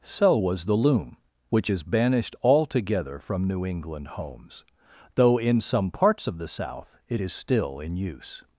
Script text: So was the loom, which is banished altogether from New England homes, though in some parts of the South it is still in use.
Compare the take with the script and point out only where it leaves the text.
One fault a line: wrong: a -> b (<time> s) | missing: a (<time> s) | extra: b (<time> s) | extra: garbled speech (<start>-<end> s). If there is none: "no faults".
no faults